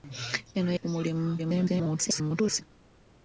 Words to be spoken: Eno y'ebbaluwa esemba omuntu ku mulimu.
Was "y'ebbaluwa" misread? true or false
true